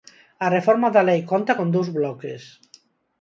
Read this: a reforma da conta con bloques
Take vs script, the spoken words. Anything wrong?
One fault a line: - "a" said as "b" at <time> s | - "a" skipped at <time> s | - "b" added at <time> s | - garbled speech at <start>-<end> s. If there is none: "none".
- "lei" added at 1.1 s
- "dous" added at 1.7 s